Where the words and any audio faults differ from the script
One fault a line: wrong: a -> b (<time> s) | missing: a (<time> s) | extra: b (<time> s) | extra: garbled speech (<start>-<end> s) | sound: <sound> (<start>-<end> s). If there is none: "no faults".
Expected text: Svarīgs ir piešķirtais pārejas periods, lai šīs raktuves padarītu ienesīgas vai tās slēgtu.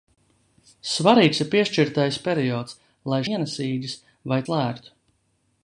missing: pārejas (2.2 s)
missing: šīs raktuves padarītu (3.2 s)
missing: tās (4.4 s)